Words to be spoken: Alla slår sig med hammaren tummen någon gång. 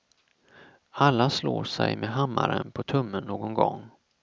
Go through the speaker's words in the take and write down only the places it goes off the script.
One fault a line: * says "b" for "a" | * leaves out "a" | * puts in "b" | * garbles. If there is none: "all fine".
* puts in "på"